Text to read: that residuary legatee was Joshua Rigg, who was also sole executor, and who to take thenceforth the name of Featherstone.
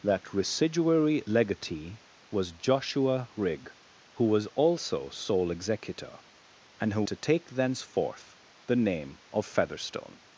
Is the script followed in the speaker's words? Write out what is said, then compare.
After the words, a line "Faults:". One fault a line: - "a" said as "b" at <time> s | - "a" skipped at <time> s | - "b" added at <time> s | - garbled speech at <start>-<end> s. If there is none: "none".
that residuary legatee was Joshua Rigg, who was also sole executor, and who to take thenceforth the name of Featherstone.
Faults:
none